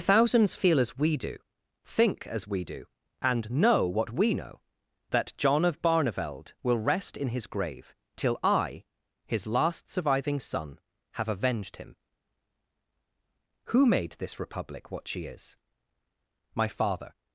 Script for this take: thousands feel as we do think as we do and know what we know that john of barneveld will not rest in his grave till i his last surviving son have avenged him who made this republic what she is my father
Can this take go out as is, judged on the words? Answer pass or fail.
fail